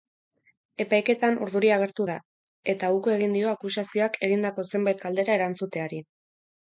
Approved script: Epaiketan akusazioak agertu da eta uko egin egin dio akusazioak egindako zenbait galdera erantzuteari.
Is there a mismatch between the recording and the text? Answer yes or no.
yes